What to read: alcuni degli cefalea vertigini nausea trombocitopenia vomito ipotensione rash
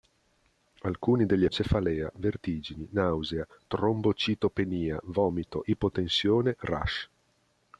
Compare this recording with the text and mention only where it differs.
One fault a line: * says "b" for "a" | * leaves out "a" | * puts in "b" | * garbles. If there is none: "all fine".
all fine